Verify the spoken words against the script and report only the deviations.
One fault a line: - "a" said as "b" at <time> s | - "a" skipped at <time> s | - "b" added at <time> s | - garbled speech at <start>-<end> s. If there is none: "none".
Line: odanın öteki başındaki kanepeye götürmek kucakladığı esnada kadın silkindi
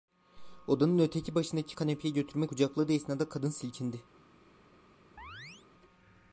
none